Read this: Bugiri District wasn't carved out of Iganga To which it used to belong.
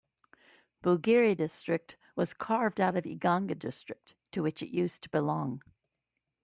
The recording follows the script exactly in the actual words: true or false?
false